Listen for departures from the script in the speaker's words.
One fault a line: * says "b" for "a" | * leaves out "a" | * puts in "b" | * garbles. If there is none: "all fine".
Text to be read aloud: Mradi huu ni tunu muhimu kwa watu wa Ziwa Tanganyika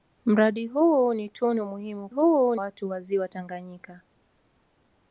* says "huu" for "kwa"